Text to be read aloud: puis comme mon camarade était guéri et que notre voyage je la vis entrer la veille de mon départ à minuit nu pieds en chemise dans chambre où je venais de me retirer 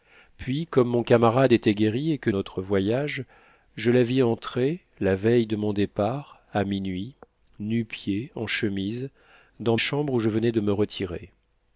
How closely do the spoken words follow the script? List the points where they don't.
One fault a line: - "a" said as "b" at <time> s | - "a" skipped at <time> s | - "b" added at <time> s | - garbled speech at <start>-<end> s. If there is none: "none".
none